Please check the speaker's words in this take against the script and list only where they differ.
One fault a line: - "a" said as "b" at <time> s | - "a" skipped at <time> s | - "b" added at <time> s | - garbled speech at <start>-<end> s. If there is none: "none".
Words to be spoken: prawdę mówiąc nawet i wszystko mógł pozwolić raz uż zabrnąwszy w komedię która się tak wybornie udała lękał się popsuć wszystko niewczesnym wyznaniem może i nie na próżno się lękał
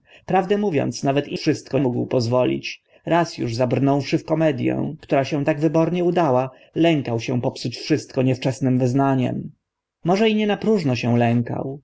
none